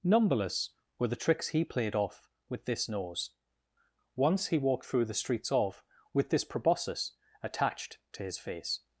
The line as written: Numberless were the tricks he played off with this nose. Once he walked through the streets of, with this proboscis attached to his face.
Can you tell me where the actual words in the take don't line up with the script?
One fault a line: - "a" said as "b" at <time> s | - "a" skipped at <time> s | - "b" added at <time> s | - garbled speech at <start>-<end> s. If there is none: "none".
none